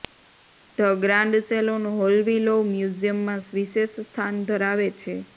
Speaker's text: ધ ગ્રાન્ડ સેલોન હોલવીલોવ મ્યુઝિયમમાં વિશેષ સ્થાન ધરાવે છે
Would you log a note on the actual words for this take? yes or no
no